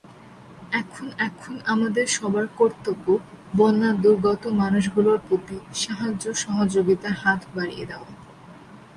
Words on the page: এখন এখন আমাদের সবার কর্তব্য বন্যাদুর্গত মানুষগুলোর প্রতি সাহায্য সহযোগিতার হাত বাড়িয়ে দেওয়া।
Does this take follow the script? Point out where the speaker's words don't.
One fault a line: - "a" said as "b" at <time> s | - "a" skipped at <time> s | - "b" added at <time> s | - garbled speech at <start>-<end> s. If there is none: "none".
none